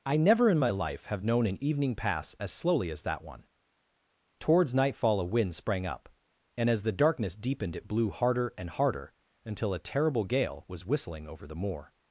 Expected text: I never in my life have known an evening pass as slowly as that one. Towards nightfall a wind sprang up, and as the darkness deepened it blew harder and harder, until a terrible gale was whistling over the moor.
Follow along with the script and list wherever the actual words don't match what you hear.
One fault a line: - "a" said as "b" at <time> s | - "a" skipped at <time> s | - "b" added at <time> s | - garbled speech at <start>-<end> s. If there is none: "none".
none